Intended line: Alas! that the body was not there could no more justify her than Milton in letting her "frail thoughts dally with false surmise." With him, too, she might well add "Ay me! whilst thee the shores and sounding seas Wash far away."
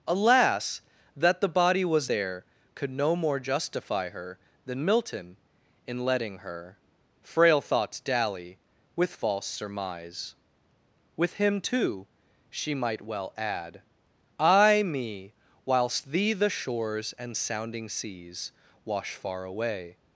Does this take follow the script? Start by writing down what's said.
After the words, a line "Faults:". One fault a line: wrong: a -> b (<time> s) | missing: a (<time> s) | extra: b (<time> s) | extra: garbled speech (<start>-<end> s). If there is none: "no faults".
Alas! that the body was there could no more justify her than Milton in letting her "frail thoughts dally with false surmise." With him, too, she might well add "Ay me! whilst thee the shores and sounding seas Wash far away."
Faults:
missing: not (2.1 s)